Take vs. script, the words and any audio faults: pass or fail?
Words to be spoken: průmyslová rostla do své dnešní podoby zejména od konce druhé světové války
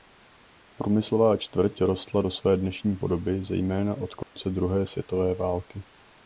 fail